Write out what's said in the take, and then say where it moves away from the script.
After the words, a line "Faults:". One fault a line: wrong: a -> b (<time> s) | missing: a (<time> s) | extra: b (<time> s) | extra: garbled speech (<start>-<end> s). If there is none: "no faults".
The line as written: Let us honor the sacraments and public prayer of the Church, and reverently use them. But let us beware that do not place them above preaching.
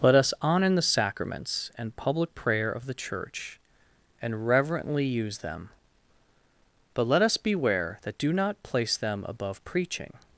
Let us honor the sacraments and public prayer of the Church, and reverently use them. But let us beware that do not place them above preaching.
Faults:
no faults